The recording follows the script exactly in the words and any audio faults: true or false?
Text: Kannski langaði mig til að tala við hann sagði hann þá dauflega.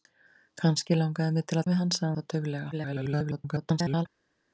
false